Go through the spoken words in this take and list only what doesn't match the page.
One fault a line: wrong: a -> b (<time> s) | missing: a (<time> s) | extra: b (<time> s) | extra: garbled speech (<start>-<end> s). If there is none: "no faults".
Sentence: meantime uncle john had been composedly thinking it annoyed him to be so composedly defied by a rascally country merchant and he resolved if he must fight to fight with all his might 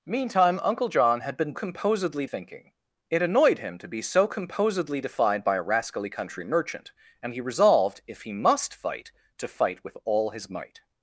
no faults